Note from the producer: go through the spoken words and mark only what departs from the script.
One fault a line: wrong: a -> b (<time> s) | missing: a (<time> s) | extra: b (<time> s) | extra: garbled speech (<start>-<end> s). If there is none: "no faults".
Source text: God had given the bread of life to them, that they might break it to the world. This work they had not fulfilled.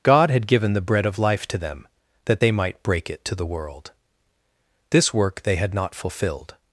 no faults